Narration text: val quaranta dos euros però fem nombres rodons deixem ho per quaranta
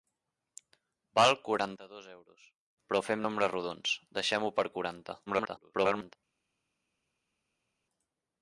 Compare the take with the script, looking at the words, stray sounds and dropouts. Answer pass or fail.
fail